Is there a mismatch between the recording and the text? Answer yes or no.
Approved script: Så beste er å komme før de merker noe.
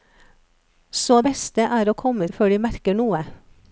no